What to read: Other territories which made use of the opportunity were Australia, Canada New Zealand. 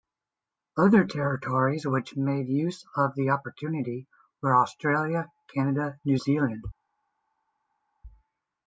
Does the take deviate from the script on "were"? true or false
false